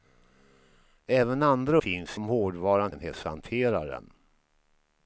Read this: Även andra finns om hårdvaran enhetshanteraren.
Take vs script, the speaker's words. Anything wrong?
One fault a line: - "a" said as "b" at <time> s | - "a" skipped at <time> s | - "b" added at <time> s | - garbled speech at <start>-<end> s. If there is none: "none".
none